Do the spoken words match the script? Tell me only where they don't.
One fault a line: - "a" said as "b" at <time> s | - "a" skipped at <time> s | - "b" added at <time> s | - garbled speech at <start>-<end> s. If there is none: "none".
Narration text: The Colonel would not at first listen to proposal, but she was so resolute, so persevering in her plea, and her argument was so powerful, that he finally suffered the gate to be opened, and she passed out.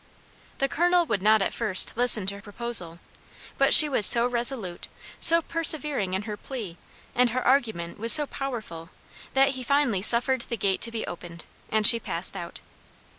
none